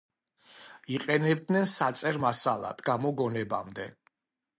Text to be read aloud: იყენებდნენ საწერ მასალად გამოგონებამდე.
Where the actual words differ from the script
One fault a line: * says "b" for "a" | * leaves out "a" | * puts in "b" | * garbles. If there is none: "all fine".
all fine